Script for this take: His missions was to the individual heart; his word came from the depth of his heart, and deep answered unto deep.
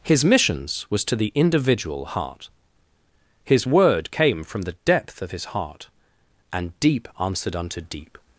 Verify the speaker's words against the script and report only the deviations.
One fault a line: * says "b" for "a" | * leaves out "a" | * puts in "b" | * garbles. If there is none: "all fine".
all fine